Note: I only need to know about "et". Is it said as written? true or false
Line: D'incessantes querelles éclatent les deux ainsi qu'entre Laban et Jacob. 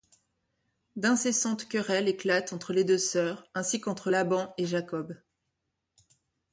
true